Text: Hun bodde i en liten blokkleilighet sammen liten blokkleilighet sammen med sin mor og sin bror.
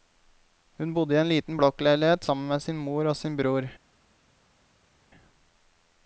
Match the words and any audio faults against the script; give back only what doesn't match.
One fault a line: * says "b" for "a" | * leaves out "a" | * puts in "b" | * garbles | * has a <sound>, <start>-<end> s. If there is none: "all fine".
* leaves out "liten blokkleilighet sammen"